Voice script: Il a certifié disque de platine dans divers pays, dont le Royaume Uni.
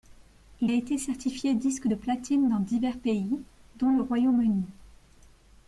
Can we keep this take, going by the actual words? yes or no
no